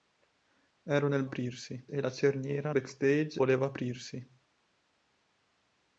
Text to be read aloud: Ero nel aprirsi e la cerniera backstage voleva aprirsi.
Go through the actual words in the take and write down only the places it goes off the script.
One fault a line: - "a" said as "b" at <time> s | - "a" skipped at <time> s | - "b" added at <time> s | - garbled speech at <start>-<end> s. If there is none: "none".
none